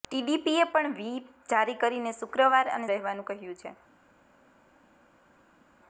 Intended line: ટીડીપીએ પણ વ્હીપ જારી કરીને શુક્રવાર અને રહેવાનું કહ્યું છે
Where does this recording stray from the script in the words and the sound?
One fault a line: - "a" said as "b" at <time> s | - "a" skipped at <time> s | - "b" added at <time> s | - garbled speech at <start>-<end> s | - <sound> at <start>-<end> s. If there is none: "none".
none